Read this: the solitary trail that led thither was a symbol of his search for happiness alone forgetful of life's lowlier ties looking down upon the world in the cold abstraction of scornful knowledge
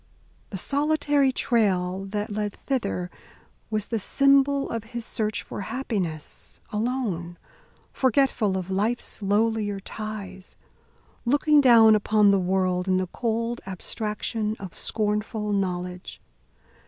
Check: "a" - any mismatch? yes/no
yes